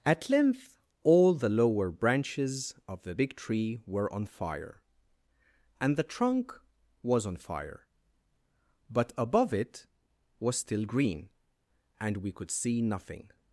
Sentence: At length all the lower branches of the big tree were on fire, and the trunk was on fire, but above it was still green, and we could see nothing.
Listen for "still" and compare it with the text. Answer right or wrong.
right